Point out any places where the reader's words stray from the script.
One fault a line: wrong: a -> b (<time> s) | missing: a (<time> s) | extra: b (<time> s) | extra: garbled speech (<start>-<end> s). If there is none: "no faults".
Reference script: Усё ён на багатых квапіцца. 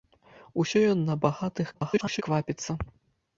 extra: garbled speech (1.7-2.2 s)